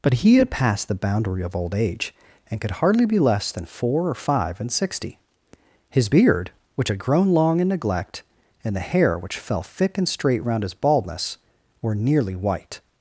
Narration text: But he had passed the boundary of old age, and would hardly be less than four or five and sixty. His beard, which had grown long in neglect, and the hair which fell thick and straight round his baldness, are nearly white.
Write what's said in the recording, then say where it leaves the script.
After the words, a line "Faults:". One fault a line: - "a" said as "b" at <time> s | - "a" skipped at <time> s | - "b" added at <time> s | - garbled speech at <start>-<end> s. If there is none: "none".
But he had passed the boundary of old age, and could hardly be less than four or five and sixty. His beard, which had grown long in neglect, and the hair which fell thick and straight round his baldness, were nearly white.
Faults:
- "would" said as "could" at 2.6 s
- "are" said as "were" at 11.8 s